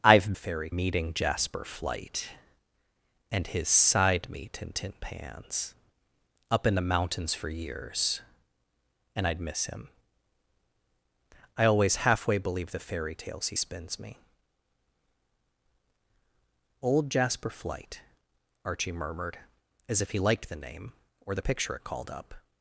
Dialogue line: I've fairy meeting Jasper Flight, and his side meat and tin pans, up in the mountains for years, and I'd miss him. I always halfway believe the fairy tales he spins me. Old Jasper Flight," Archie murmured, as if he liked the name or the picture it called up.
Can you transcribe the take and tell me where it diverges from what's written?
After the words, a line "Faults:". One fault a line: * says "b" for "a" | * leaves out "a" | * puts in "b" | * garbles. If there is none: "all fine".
I've fairy meeting Jasper Flight, and his side meat and tin pans, up in the mountains for years, and I'd miss him. I always halfway believe the fairy tales he spins me. Old Jasper Flight," Archie murmured, as if he liked the name or the picture it called up.
Faults:
all fine